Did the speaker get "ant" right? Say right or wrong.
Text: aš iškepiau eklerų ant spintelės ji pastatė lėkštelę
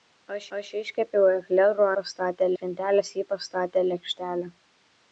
wrong